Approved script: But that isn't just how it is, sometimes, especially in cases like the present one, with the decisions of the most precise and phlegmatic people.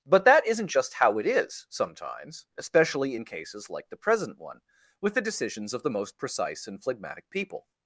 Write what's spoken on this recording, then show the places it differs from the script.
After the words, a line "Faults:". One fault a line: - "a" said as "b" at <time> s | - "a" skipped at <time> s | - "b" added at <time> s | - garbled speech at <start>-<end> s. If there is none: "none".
But that isn't just how it is, sometimes, especially in cases like the present one, with the decisions of the most precise and phlegmatic people.
Faults:
none